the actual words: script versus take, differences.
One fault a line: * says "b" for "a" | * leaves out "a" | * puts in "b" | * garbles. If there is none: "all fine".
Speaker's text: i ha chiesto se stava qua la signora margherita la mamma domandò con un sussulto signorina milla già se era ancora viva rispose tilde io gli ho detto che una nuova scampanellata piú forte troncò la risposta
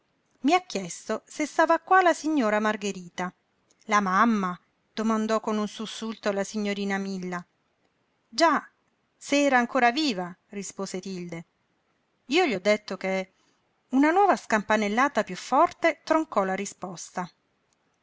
* puts in "la"